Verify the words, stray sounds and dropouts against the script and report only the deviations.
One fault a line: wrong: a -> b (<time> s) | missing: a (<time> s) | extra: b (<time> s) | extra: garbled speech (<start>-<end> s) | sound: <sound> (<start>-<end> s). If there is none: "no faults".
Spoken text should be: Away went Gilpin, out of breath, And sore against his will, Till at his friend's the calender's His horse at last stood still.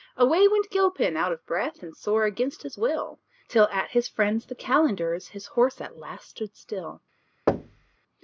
sound: thud (7.5-8.0 s)